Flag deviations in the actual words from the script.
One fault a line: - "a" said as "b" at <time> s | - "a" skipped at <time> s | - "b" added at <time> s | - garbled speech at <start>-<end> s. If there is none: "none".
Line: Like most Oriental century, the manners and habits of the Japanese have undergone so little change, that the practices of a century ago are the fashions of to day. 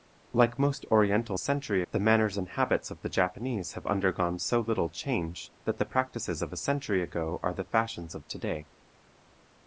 none